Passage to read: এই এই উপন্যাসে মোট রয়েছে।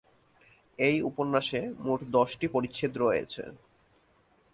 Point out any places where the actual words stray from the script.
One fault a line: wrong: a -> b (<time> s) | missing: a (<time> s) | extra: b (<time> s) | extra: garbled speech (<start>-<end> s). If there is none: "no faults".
missing: এই (1.0 s)
extra: দশটি পরিচ্ছেদ (2.2 s)